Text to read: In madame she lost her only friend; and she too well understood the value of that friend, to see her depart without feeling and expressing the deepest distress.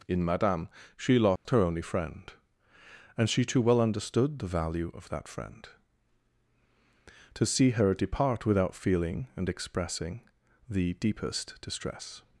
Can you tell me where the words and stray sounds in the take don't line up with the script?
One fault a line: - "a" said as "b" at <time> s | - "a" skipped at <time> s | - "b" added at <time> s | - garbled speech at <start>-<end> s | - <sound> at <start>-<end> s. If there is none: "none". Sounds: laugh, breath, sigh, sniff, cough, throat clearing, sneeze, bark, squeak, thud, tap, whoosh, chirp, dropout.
- dropout at 1.4-1.5 s